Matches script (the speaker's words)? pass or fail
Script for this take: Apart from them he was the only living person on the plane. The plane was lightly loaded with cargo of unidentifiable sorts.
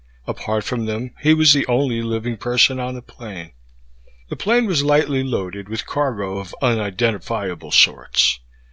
pass